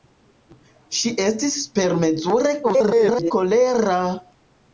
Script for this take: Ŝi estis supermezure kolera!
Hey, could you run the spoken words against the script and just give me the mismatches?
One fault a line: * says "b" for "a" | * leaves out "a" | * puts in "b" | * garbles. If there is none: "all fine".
* garbles